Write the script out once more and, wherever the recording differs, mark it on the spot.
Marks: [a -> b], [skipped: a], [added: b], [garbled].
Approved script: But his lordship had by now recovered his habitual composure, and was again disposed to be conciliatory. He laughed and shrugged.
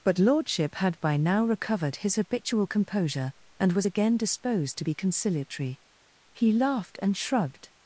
But [skipped: his] lordship had by now recovered his habitual composure, and was again disposed to be conciliatory. He laughed and shrugged.